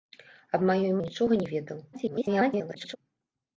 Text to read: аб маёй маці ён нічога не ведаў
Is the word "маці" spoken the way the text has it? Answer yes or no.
no